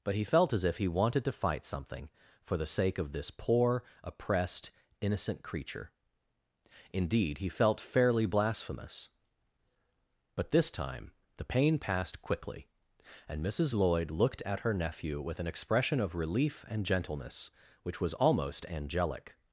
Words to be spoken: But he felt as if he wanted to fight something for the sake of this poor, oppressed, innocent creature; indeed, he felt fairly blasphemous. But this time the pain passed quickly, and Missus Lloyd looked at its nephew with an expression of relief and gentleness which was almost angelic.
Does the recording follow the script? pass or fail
fail